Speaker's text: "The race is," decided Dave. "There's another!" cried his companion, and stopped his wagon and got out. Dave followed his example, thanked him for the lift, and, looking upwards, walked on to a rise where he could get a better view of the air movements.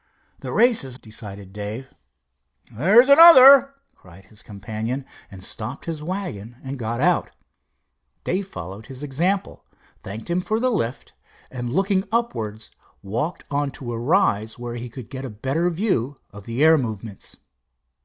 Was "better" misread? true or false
false